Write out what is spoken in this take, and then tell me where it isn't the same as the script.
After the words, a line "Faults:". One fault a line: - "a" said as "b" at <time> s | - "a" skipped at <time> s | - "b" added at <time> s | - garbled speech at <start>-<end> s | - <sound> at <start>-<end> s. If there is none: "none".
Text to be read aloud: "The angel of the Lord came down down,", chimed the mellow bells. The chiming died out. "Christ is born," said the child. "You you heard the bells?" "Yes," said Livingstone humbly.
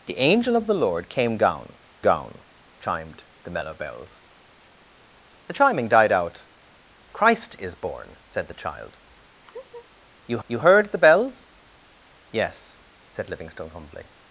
"The angel of the Lord came down down,", chimed the mellow bells. The chiming died out. "Christ is born," said the child. "You you heard the bells?" "Yes," said Livingstone humbly.
Faults:
- laugh at 9.4-9.9 s